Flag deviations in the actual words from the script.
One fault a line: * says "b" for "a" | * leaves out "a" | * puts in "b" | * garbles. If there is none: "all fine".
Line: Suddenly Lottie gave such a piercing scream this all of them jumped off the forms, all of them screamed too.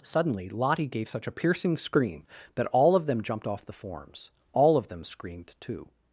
* says "that" for "this"